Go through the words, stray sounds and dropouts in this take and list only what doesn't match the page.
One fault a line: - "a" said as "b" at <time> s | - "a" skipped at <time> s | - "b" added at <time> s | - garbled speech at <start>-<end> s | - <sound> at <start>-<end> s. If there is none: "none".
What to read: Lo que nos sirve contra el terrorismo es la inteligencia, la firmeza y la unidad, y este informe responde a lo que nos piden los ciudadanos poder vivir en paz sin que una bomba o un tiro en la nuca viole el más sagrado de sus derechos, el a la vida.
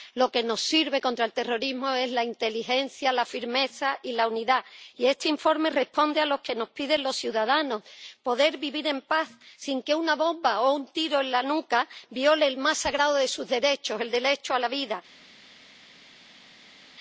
- "derecho" added at 14.1 s